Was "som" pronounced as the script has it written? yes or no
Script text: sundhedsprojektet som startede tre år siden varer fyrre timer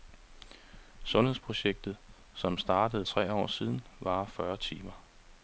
yes